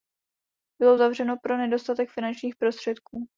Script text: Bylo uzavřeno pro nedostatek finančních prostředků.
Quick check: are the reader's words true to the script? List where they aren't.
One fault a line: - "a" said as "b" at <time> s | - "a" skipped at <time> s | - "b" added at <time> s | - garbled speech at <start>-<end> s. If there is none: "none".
none